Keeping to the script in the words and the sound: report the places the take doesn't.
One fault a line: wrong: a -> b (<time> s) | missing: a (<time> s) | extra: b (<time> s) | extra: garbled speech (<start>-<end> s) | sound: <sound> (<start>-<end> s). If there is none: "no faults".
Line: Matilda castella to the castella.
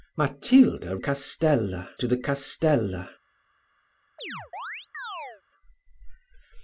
sound: chirp (4.2-5.4 s)